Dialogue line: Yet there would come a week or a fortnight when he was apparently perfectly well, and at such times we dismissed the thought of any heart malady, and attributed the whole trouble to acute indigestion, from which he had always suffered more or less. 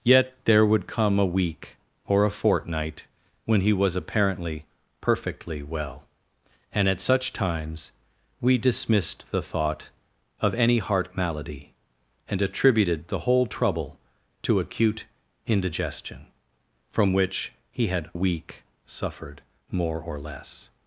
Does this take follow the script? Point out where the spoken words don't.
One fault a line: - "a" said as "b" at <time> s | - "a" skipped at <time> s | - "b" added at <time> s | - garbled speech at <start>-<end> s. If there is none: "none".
- "always" said as "week" at 18.1 s